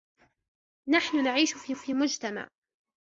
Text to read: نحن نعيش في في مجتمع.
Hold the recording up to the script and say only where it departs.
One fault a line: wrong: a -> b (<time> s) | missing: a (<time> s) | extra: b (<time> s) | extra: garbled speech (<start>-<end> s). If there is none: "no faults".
no faults